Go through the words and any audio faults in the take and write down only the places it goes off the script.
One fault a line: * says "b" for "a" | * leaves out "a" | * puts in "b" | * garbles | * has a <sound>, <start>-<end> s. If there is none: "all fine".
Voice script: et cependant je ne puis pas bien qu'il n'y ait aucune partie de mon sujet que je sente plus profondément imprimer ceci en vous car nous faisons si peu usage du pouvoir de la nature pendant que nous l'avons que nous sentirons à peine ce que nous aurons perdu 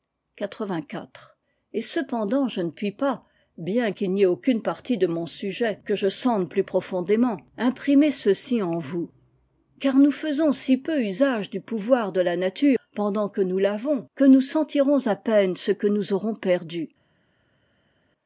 all fine